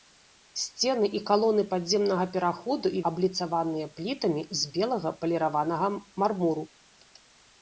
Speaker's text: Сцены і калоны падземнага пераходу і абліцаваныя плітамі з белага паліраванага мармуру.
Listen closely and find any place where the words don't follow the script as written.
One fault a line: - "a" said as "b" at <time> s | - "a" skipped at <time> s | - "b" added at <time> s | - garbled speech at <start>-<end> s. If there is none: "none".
none